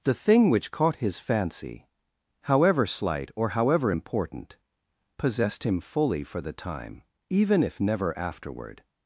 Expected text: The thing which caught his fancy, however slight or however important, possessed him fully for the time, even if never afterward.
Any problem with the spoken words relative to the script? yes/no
no